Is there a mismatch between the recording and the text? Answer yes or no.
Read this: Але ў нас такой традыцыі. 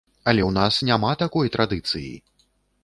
yes